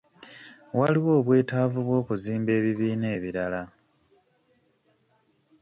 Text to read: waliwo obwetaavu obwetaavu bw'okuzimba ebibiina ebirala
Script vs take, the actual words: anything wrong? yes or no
yes